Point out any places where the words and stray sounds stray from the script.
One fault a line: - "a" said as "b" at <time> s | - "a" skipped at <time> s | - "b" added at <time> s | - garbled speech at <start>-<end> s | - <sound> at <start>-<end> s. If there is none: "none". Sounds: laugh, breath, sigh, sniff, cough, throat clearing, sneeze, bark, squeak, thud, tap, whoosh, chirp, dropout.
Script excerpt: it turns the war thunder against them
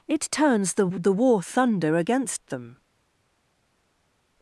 - "the" added at 0.8 s